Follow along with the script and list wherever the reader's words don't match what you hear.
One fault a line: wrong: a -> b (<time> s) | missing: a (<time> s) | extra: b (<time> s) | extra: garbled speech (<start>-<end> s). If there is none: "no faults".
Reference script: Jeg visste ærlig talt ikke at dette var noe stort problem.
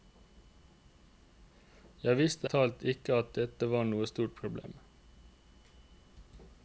missing: ærlig (2.5 s)